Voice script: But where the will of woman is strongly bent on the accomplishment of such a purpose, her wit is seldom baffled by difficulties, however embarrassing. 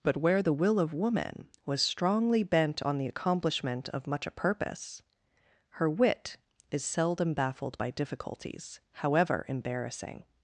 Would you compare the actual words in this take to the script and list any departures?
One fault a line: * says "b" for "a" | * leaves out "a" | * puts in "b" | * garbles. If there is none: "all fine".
* says "was" for "is"
* says "much" for "such"